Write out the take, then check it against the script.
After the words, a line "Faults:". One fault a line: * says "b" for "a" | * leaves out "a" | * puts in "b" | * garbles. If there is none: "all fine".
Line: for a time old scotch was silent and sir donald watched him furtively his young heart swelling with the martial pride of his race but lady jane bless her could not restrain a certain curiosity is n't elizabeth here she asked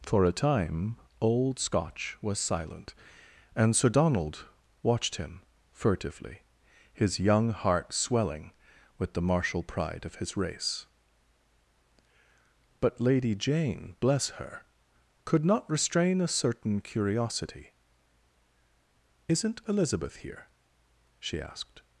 for a time old scotch was silent and sir donald watched him furtively his young heart swelling with the martial pride of his race but lady jane bless her could not restrain a certain curiosity is n't elizabeth here she asked
Faults:
all fine